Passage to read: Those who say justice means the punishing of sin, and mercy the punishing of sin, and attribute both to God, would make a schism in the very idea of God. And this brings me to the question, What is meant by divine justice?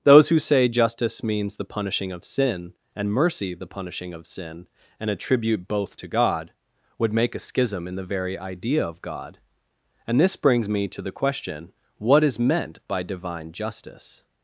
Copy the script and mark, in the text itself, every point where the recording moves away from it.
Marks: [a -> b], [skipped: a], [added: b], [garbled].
Those who say justice means the punishing of sin, and mercy the punishing of sin, and attribute both to God, would make a schism in the very idea of God. And this brings me to the question, What is meant by divine justice?